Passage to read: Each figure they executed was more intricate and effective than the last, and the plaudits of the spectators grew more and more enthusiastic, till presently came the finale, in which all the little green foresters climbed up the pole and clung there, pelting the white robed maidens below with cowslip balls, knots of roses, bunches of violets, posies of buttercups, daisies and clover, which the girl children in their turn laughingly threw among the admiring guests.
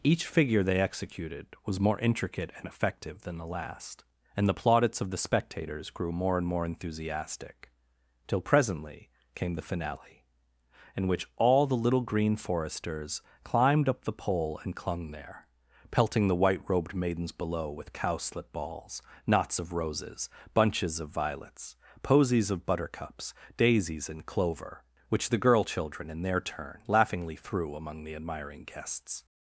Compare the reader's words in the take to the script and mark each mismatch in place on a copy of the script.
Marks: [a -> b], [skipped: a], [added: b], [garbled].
Each figure they executed was more intricate and effective than the last, and the plaudits of the spectators grew more and more enthusiastic, till presently came the finale, in which all the little green foresters climbed up the pole and clung there, pelting the white robed maidens below with cowslip balls, knots of roses, bunches of violets, posies of buttercups, daisies and clover, which the girl children in their turn laughingly threw among the admiring guests.